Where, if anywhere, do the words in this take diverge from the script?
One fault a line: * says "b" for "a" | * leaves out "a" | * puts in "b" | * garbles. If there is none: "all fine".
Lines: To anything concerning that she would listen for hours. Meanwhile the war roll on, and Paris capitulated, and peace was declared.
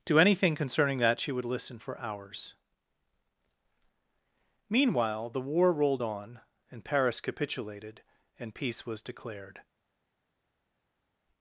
* says "rolled" for "roll"